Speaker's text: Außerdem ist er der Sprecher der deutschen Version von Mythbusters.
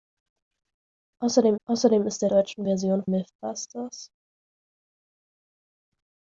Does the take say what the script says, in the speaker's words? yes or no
no